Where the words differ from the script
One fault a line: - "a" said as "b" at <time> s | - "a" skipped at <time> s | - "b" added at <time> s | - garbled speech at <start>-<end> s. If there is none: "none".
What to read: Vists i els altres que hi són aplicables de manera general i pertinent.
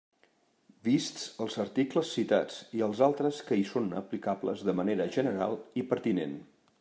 - "els articles citats" added at 1.4 s